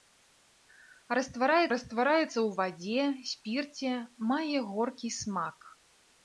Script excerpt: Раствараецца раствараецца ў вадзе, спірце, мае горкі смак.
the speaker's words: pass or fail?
pass